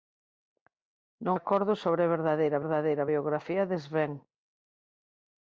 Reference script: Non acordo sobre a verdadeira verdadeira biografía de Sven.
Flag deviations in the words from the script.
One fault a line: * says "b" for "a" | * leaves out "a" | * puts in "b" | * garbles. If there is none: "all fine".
all fine